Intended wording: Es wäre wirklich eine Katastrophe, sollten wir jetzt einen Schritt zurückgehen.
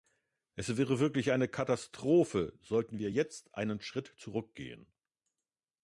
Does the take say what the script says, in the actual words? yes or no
yes